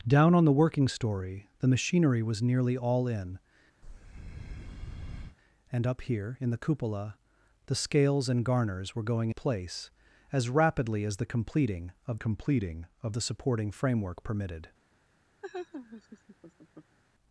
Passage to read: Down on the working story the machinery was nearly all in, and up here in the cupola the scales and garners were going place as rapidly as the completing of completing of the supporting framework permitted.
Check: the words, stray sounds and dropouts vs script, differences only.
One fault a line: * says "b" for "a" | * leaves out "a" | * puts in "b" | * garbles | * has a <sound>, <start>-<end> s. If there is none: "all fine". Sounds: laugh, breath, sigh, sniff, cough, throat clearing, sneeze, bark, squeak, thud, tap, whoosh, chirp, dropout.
* has a breath, 3.8-5.4 s
* has a laugh, 15.4-17.0 s